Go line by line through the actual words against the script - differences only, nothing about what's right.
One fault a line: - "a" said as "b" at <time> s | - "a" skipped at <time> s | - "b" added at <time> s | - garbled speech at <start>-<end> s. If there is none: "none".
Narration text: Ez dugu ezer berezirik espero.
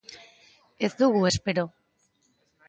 - "ezer berezirik" skipped at 1.2 s